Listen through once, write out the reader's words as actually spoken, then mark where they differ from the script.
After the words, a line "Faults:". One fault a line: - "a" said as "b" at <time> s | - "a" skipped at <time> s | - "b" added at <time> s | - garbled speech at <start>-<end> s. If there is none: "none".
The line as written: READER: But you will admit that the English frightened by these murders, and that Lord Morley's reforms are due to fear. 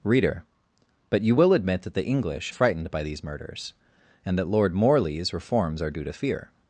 READER: But you will admit that the English frightened by these murders, and that Lord Morley's reforms are due to fear.
Faults:
none